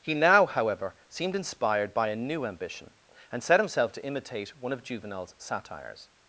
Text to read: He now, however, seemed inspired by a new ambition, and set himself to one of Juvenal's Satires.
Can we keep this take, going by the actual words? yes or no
no